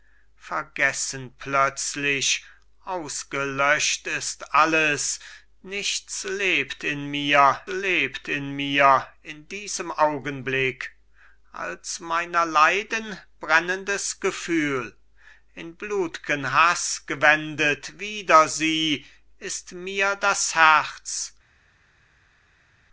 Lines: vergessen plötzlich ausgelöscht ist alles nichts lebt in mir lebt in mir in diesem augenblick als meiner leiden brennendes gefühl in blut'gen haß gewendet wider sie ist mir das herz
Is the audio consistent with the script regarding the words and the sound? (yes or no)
yes